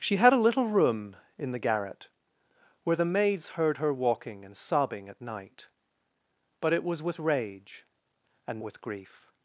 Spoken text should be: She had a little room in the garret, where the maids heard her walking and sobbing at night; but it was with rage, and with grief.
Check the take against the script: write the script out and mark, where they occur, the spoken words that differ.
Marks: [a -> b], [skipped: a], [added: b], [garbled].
She had a little room in the garret, where the maids heard her walking and sobbing at night; but it was with rage, and with grief.